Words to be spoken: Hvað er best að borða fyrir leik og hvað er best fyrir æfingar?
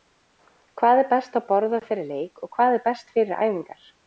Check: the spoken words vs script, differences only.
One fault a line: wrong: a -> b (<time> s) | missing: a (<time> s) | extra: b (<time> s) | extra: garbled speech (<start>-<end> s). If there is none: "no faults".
no faults